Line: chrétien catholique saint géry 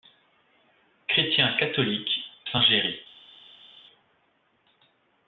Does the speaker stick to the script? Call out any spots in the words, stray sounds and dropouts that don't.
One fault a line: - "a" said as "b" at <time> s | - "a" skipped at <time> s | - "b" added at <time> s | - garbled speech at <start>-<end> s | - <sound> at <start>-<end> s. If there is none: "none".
none